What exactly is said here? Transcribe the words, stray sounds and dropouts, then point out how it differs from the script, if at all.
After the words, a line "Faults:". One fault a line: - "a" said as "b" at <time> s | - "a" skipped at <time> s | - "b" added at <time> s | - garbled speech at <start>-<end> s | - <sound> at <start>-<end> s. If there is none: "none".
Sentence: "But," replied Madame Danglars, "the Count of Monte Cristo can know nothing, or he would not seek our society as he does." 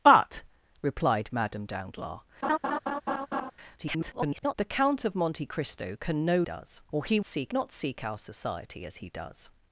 "But," replied Madame Danglars, [garbled] "the Count of Monte Cristo can know does, or he seek not seek our society as he does."
Faults:
- laugh at 2.4-3.5 s
- garbled speech at 3.8-4.5 s
- "nothing" said as "does" at 6.4 s
- "would" said as "seek" at 7.2 s